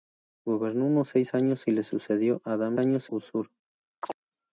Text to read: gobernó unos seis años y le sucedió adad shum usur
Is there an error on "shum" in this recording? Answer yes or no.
yes